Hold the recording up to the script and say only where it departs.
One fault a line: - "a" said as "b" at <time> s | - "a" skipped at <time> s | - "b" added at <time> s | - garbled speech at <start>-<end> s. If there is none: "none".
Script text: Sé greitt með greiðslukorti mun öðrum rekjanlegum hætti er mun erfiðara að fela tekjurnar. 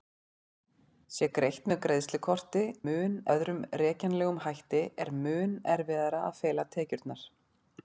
none